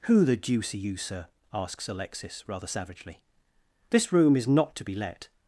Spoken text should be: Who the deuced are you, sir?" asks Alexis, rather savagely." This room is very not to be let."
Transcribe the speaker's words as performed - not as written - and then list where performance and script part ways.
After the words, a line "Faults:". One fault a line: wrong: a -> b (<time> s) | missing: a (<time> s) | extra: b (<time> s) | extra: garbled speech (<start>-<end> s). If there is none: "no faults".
Who the deuce are you, sir?" asks Alexis, rather savagely." This room is not to be let."
Faults:
wrong: deuced -> deuce (0.3 s)
missing: very (4.5 s)